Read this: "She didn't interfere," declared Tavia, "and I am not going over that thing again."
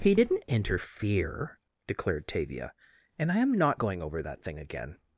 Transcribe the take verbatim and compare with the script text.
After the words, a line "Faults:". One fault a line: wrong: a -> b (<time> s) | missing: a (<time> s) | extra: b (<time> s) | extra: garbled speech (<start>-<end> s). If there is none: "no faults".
"He didn't interfere," declared Tavia, "and I am not going over that thing again."
Faults:
wrong: She -> He (0.0 s)